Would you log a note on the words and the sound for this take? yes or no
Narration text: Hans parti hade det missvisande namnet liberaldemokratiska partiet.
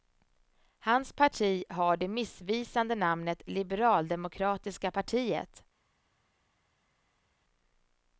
yes